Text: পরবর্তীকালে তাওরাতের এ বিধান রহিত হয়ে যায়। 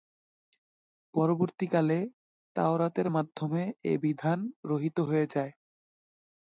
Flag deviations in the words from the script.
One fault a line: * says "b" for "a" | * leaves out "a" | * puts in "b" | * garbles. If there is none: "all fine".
* puts in "মাধ্যমে"